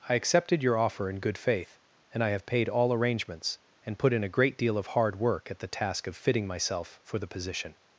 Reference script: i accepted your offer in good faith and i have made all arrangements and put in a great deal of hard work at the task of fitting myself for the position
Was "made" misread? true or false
true